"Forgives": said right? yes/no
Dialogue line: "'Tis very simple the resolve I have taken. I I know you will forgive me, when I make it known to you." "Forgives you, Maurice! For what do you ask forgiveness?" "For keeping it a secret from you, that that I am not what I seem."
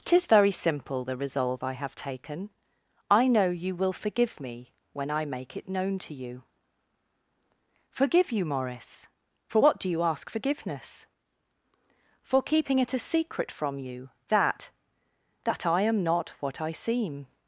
no